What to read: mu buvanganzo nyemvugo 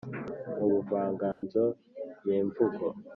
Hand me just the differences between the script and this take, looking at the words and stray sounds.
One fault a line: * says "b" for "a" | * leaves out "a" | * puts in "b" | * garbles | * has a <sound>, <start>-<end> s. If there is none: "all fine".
* has a dropout, 1.3-1.4 s